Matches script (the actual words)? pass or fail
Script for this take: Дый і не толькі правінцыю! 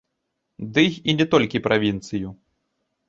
pass